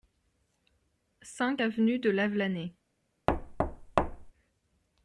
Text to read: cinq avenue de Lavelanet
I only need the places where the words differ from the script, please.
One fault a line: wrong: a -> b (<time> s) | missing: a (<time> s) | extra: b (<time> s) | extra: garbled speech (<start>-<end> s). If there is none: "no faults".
no faults